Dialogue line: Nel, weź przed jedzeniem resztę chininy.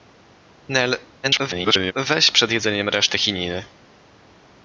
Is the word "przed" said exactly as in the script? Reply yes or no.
yes